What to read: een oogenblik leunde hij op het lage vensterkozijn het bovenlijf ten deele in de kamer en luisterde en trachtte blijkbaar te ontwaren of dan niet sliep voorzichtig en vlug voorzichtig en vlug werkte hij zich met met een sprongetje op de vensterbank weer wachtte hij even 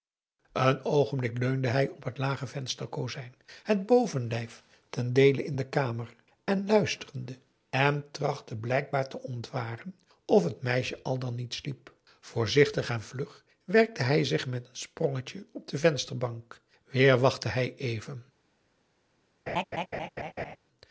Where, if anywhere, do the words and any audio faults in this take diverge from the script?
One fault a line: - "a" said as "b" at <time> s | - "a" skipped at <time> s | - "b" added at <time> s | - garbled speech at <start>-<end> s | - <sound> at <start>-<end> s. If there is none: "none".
- "het meisje al" added at 10.4 s
- "voorzichtig en vlug" skipped at 13.4 s
- "met" skipped at 14.7 s
- laugh at 19.5-20.6 s